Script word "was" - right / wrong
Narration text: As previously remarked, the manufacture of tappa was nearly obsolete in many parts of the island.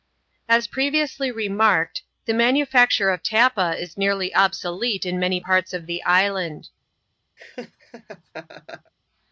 wrong